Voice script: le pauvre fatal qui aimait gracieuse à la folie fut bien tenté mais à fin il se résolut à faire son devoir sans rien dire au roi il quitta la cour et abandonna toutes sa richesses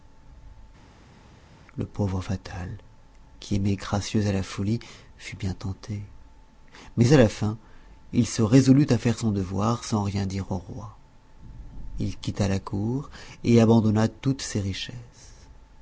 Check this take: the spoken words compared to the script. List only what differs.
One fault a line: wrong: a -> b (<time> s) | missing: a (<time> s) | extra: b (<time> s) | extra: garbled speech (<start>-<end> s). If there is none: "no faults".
extra: la (7.2 s)
wrong: sa -> ses (14.4 s)